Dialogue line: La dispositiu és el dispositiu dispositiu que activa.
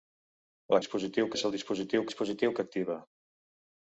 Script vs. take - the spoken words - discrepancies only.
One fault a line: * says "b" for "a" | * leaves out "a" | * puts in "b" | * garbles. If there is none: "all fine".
all fine